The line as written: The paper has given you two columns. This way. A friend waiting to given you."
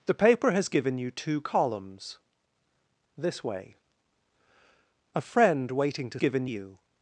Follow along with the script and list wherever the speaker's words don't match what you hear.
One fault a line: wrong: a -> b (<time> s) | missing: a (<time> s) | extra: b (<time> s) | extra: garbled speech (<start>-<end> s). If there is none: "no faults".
no faults